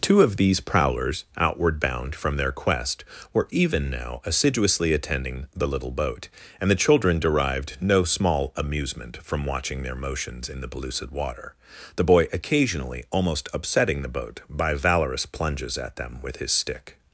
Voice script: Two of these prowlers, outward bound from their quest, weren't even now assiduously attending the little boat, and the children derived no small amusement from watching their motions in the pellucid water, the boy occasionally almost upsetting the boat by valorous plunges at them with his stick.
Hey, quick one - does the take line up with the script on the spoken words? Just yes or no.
no